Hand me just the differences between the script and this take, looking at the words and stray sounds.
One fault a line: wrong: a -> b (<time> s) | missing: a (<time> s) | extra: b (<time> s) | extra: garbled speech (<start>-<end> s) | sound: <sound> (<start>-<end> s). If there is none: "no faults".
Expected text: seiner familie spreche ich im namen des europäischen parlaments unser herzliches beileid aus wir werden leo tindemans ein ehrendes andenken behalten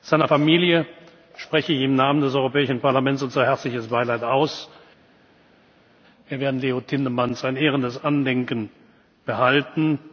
no faults